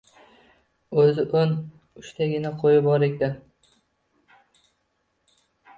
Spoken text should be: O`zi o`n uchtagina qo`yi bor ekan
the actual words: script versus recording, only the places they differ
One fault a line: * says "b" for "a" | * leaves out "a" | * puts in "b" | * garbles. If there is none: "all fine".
all fine